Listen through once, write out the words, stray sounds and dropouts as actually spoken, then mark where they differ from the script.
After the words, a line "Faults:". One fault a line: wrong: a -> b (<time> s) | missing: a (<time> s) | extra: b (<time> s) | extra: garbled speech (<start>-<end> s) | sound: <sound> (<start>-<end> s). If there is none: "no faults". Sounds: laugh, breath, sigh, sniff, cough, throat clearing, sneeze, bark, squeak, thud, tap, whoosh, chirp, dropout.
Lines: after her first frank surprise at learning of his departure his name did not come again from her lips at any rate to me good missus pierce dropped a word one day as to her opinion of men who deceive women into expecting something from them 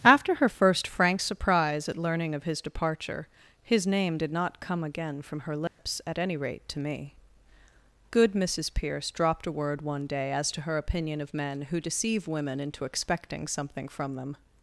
after her first frank surprise at learning of his departure his name did not come again from her lips at any rate to me good missus pierce dropped a word one day as to her opinion of men who deceive women into expecting something from them
Faults:
sound: dropout (5.7-5.8 s)